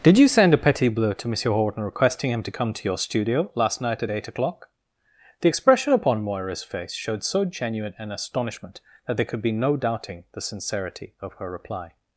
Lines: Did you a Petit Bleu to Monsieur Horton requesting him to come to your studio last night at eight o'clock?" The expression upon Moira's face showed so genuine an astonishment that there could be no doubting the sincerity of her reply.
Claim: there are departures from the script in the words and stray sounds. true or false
true